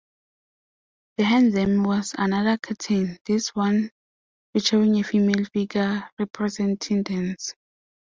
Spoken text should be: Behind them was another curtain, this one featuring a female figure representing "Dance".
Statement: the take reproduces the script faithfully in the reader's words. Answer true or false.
true